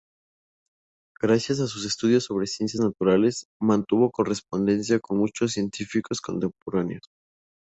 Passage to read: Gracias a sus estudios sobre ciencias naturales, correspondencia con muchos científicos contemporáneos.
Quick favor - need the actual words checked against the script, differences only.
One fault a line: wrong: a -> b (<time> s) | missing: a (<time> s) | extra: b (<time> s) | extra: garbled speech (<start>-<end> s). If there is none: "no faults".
extra: mantuvo (3.6 s)